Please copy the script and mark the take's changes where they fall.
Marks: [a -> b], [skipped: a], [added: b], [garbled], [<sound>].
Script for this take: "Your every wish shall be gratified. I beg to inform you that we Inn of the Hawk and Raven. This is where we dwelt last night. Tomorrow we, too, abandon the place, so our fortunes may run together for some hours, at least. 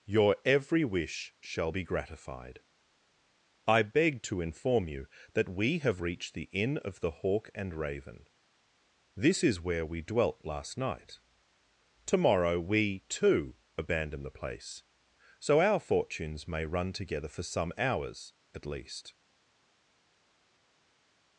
"Your every wish shall be gratified. I beg to inform you that we [added: have reached the] Inn of the Hawk and Raven. This is where we dwelt last night. Tomorrow we, too, abandon the place, so our fortunes may run together for some hours, at least.